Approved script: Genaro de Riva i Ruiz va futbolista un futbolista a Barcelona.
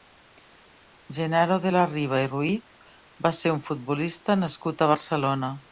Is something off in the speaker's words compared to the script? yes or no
yes